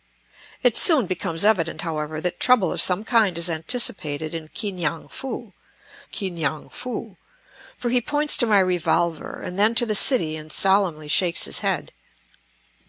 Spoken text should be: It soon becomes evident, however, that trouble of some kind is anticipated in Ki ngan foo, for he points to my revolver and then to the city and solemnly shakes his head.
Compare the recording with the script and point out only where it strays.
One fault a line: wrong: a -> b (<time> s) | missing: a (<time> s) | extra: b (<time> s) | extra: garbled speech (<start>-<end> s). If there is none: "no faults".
extra: Ki ngan foo (6.0 s)